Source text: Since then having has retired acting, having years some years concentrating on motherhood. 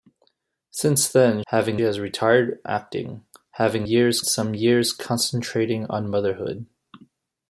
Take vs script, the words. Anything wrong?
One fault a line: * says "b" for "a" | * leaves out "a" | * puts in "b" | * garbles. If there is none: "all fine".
all fine